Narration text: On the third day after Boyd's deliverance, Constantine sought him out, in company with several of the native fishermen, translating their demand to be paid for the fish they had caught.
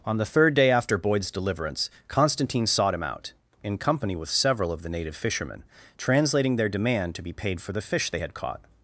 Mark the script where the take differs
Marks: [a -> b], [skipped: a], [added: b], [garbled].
On the third day after Boyd's deliverance, Constantine sought him out, in company with several of the native fishermen, translating their demand to be paid for the fish they had caught.